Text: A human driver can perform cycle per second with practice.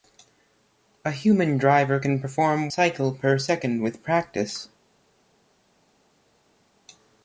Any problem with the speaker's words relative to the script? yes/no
no